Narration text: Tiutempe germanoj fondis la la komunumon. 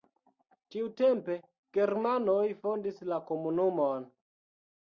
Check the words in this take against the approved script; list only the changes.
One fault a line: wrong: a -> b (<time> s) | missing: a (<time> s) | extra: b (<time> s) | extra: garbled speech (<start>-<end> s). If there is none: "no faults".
missing: la (3.2 s)